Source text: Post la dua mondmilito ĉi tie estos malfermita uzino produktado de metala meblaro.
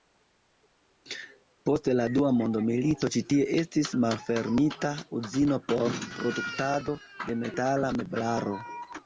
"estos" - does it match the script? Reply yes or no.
no